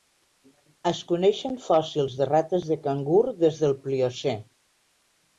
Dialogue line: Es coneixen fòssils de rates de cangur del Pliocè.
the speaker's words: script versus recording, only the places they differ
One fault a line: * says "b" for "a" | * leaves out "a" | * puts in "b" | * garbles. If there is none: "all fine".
* puts in "des"